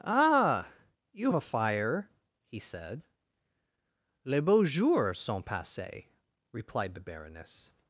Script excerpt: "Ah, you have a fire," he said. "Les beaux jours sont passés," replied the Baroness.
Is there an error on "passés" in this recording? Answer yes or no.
no